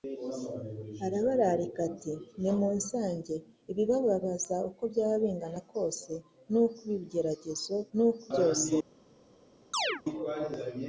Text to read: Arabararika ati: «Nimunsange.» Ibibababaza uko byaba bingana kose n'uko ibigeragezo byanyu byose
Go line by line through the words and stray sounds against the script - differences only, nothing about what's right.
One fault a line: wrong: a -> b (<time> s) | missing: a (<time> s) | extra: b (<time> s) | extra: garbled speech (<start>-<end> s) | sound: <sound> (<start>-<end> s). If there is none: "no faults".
wrong: byanyu -> n'uko (8.0 s)
sound: chirp (9.7-10.0 s)